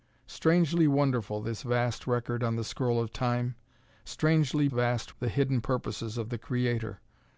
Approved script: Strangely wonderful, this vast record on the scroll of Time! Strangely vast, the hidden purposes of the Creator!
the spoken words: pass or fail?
pass